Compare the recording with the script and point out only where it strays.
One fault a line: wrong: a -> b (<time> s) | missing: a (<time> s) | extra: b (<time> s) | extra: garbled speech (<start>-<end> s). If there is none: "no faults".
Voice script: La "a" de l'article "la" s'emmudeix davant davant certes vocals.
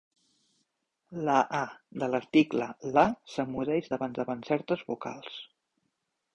no faults